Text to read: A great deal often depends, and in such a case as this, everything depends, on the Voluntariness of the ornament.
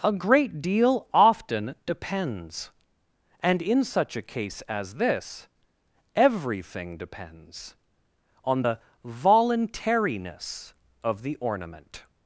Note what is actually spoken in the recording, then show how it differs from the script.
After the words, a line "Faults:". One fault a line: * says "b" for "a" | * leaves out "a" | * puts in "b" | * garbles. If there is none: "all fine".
A great deal often depends, and in such a case as this, everything depends, on the Voluntariness of the ornament.
Faults:
all fine